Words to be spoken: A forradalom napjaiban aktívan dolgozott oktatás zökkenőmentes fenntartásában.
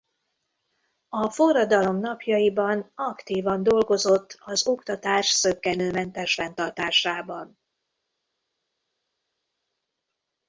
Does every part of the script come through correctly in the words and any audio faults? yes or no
no